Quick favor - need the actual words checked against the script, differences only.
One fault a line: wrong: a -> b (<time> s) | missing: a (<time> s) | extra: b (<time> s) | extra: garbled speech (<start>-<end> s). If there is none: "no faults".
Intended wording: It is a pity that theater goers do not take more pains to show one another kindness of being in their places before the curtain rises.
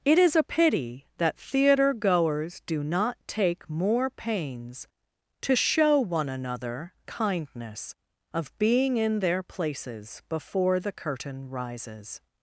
no faults